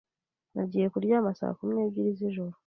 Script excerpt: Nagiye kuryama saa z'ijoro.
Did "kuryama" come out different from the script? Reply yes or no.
no